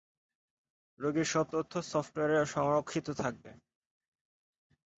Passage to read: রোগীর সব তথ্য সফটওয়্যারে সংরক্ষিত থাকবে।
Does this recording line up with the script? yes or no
yes